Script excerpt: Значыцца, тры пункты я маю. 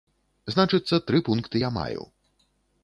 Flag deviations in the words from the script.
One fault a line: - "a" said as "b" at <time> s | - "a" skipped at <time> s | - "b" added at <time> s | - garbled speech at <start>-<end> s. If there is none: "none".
none